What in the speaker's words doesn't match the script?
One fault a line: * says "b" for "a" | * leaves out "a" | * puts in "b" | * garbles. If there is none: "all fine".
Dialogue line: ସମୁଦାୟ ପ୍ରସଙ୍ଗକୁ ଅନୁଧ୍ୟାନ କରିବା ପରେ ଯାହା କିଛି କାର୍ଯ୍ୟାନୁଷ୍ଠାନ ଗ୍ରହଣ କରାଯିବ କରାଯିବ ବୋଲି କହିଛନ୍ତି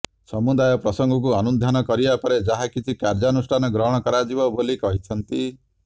* leaves out "କରାଯିବ"